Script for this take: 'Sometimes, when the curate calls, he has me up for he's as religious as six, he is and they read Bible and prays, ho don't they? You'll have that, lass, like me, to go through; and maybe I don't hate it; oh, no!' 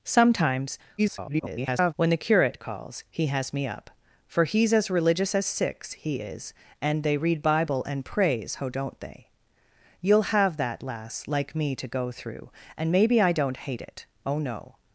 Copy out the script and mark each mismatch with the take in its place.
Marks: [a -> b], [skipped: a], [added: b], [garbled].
'Sometimes, [garbled] when the curate calls, he has me up for he's as religious as six, he is and they read Bible and prays, ho don't they? You'll have that, lass, like me, to go through; and maybe I don't hate it; oh, no!'